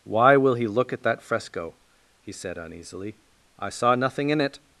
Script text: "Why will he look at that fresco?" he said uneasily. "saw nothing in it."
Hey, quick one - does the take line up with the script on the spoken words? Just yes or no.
no